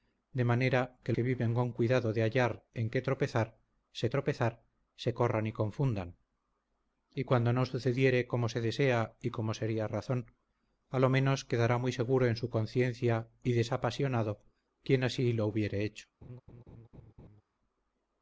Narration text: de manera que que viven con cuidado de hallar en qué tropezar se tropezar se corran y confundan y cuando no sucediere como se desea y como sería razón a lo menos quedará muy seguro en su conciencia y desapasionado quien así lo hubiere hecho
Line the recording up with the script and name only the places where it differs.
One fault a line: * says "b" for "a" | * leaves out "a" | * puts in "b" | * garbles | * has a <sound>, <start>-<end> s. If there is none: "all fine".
* has a laugh, 16.2-17.4 s